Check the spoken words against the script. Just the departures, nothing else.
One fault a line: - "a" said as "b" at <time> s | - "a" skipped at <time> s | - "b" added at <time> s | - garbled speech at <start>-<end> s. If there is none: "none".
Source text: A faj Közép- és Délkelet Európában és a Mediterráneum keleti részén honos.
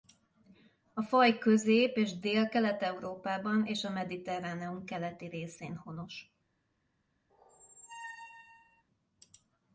none